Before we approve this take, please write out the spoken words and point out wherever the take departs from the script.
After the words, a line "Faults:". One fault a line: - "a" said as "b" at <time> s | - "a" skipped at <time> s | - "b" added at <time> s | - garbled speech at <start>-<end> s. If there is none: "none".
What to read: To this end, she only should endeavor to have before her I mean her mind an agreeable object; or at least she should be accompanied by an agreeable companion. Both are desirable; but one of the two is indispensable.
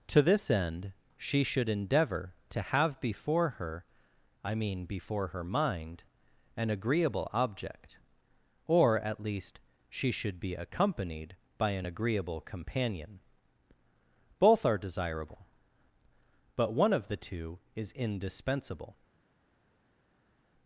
To this end, she should endeavor to have before her I mean before her mind an agreeable object; or at least she should be accompanied by an agreeable companion. Both are desirable; but one of the two is indispensable.
Faults:
- "only" skipped at 1.4 s
- "before" added at 4.8 s